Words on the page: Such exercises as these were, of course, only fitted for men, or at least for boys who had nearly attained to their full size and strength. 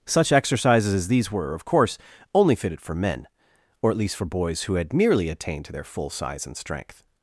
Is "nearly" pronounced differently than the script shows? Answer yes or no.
yes